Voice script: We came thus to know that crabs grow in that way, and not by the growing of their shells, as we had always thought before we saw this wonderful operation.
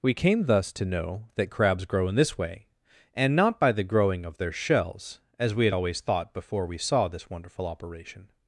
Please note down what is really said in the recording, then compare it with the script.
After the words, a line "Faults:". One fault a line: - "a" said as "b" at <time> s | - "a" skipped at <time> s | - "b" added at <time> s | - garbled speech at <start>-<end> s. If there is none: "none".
We came thus to know that crabs grow in this way, and not by the growing of their shells, as we had always thought before we saw this wonderful operation.
Faults:
- "that" said as "this" at 2.1 s